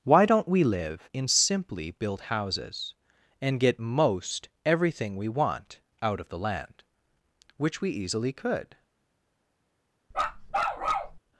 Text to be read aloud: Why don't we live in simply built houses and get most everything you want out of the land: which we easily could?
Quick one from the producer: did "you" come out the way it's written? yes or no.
no